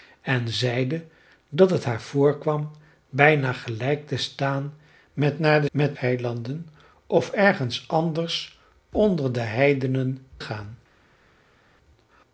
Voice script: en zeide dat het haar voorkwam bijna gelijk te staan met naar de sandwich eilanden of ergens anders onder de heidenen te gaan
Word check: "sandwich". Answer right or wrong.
wrong